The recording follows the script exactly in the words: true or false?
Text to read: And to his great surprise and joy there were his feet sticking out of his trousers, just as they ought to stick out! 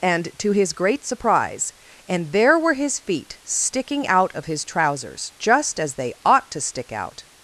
false